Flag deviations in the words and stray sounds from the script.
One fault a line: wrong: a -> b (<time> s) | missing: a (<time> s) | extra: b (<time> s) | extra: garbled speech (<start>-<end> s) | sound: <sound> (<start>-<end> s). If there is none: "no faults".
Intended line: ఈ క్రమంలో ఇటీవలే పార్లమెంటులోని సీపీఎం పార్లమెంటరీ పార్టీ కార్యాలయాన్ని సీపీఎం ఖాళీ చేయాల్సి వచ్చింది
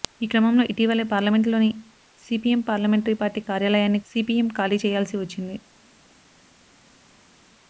no faults